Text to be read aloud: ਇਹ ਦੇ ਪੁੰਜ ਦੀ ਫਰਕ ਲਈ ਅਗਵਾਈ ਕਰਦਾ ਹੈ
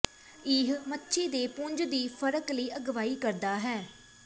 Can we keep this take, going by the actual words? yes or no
no